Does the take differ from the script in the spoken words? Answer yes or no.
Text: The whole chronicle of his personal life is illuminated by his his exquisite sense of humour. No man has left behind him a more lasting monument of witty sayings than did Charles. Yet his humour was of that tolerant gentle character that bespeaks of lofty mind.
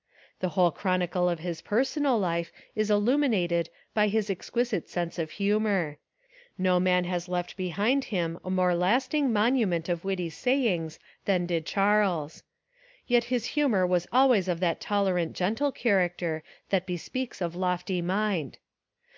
yes